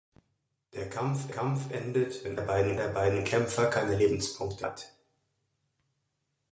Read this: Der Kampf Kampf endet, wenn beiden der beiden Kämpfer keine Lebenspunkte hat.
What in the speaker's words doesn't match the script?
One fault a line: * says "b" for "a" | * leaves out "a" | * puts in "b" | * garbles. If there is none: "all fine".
all fine